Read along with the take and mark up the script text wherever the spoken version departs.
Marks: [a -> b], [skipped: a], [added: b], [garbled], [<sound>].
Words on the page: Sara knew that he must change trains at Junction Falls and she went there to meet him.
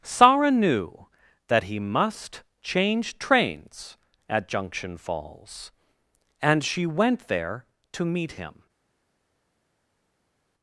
Sara knew that he must change trains at Junction Falls and she went there to meet him.